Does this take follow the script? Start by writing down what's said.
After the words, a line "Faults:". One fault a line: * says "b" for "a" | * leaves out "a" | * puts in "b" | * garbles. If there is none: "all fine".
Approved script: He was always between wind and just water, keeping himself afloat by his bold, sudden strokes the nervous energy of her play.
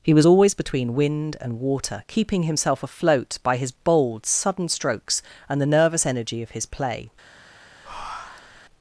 He was always between wind and water, keeping himself afloat by his bold, sudden strokes and the nervous energy of his play.
Faults:
* leaves out "just"
* puts in "and"
* says "his" for "her"